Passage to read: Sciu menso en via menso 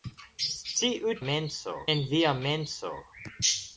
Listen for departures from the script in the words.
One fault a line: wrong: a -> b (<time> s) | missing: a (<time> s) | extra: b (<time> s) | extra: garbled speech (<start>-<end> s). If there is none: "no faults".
no faults